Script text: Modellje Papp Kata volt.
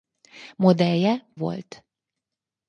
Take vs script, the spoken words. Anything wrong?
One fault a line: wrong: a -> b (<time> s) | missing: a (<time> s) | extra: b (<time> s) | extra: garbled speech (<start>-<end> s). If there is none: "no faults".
missing: Papp Kata (1.3 s)